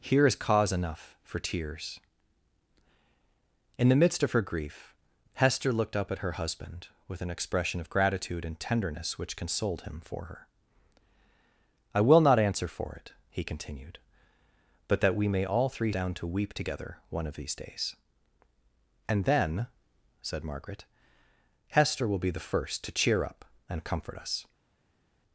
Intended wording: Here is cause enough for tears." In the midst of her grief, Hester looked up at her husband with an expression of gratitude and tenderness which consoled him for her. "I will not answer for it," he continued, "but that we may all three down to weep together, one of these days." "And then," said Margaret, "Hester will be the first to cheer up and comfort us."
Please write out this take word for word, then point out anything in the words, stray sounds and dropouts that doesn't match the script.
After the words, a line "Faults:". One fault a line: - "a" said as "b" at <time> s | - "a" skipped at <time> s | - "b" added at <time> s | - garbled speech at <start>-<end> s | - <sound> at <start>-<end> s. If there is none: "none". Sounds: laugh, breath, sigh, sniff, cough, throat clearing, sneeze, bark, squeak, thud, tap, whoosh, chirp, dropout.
Here is cause enough for tears." In the midst of her grief, Hester looked up at her husband with an expression of gratitude and tenderness which consoled him for her. "I will not answer for it," he continued, "but that we may all three down to weep together, one of these days." "And then," said Margaret, "Hester will be the first to cheer up and comfort us."
Faults:
none